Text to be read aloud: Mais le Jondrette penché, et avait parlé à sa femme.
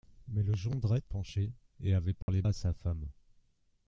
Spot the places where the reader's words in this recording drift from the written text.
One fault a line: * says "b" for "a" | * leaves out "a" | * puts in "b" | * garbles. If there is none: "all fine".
all fine